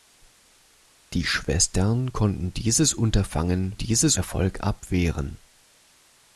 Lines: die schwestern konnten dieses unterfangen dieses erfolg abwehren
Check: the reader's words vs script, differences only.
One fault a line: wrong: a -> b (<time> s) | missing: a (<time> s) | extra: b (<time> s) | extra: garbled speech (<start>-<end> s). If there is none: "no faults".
no faults